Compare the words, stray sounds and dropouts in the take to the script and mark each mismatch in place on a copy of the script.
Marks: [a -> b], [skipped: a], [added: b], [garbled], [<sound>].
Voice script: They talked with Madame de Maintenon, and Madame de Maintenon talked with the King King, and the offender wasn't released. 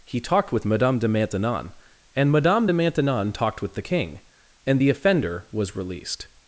[They -> He] talked with Madame de Maintenon, and Madame de Maintenon talked with the King [skipped: King,] and the offender [wasn't -> was] released.